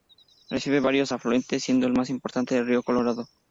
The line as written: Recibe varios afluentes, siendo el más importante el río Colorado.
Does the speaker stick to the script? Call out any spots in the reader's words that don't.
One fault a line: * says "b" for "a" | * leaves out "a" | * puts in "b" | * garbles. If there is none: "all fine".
all fine